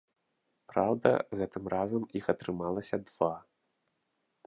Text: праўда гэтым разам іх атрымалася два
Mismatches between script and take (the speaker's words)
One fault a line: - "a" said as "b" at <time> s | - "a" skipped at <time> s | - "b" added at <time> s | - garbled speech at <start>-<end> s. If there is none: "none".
none